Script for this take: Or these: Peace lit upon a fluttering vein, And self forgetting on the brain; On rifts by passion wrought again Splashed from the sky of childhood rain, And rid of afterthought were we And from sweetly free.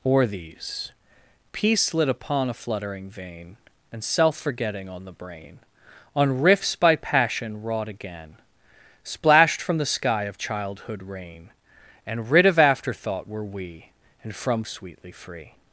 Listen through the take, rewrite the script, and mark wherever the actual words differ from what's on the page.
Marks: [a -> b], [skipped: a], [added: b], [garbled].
Or these: Peace lit upon a fluttering vein, And self forgetting on the brain; On rifts by passion wrought again Splashed from the sky of childhood rain, And rid of afterthought were we And from sweetly free.